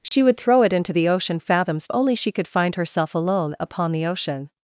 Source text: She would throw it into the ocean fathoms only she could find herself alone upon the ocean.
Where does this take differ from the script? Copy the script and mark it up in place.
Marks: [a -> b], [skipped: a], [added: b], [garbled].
She would throw it into the ocean fathoms only she could find herself alone upon the ocean.